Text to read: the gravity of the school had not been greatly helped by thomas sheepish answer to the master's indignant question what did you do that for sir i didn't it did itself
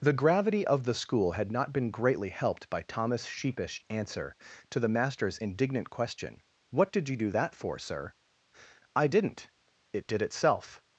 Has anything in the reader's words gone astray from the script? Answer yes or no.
no